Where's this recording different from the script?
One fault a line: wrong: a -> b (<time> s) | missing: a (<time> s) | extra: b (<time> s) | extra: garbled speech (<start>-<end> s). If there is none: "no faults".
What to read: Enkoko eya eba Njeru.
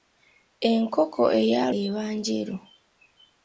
no faults